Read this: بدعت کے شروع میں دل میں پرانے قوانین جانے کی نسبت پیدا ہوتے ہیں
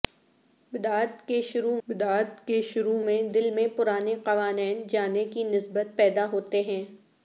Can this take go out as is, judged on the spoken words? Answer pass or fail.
fail